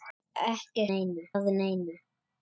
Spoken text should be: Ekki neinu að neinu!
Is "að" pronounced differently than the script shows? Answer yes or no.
no